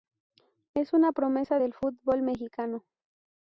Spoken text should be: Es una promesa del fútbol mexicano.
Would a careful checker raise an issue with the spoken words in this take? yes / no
no